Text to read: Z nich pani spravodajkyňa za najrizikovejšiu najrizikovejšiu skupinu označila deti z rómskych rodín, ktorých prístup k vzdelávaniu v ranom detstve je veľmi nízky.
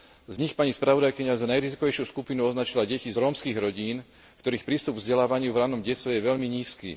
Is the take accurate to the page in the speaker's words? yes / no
no